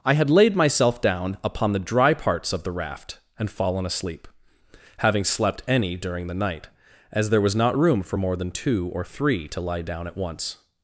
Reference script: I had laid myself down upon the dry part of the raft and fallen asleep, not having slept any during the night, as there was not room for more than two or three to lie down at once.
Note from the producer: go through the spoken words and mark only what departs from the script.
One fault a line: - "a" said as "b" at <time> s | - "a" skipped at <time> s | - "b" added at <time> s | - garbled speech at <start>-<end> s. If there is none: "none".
- "part" said as "parts" at 2.1 s
- "not" skipped at 4.3 s